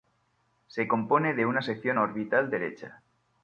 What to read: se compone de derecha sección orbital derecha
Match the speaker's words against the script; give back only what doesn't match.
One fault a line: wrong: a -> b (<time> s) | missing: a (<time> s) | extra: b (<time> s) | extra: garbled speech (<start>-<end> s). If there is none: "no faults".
wrong: derecha -> una (1.4 s)